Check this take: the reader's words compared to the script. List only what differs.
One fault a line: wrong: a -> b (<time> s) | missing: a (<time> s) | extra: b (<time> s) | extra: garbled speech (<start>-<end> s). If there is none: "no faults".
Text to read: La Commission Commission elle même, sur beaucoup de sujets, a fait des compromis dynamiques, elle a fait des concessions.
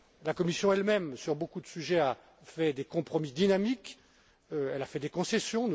missing: Commission (0.7 s)